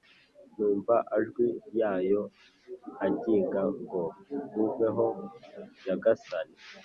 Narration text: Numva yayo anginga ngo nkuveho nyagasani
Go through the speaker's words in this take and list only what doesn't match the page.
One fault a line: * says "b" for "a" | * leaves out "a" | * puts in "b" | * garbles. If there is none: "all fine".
* puts in "ajwi"